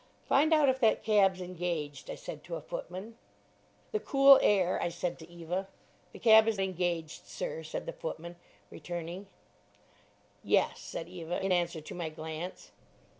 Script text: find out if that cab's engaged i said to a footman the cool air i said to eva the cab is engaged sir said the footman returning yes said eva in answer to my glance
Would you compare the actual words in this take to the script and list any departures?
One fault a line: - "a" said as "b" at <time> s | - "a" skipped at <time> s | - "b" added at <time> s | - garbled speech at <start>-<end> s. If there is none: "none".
none